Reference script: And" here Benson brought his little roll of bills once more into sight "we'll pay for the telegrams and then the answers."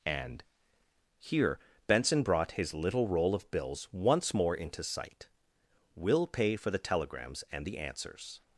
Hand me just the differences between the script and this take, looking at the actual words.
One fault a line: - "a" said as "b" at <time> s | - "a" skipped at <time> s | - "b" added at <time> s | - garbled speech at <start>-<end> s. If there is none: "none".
- "then" skipped at 7.6 s